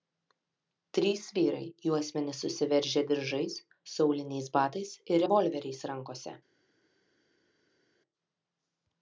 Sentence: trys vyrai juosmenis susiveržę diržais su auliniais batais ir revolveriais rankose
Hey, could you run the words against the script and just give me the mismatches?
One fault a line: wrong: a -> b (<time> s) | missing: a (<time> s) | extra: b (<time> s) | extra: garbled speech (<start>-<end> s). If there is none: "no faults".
no faults